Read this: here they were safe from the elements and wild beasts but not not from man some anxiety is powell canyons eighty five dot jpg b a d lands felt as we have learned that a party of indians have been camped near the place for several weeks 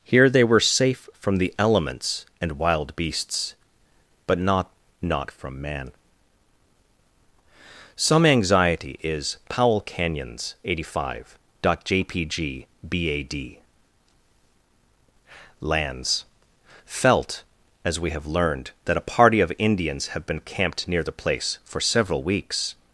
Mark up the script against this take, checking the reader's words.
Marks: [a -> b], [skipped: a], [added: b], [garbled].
here they were safe from the elements and wild beasts but not not from man some anxiety is powell canyons eighty five dot jpg b a d lands felt as we have learned that a party of indians have been camped near the place for several weeks